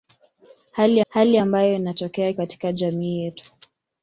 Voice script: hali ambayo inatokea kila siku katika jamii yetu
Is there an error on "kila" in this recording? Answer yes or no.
yes